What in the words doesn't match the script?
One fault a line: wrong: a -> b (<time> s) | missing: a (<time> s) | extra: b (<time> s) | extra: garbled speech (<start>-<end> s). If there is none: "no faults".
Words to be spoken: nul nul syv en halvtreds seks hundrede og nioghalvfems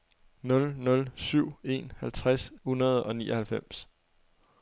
missing: seks (2.5 s)